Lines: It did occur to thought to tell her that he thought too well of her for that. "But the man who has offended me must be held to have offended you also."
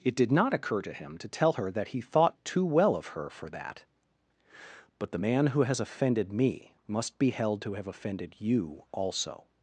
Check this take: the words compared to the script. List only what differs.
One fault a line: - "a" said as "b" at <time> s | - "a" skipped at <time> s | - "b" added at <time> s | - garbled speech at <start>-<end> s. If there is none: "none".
- "not" added at 0.3 s
- "thought" said as "him" at 0.9 s